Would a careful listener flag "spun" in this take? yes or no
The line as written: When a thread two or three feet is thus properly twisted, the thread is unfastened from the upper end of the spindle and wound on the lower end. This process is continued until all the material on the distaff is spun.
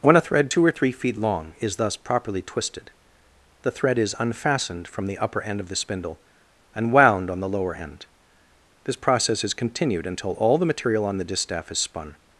no